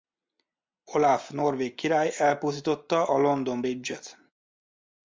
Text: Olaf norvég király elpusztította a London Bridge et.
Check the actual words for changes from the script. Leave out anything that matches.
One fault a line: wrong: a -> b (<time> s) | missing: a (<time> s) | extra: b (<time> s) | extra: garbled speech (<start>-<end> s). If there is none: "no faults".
no faults